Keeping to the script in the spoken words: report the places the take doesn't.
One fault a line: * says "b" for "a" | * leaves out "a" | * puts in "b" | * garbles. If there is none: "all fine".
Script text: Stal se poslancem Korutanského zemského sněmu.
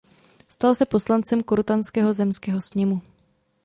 all fine